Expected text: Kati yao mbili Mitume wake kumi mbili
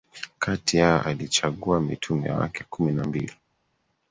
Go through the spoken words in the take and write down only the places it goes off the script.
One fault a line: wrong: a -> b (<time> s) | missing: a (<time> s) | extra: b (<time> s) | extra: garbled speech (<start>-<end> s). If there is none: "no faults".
wrong: mbili -> alichagua (1.0 s)
extra: na (2.9 s)